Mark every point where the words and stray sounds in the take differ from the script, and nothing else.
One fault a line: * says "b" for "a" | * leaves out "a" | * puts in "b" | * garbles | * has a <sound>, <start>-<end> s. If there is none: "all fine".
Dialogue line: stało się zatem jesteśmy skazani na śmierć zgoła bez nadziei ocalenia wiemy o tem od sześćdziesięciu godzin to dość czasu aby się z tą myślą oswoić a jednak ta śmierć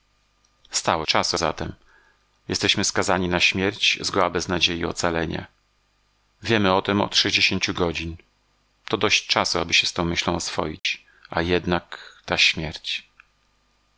* says "czasu" for "się"
* has a dropout, 10.8-10.8 s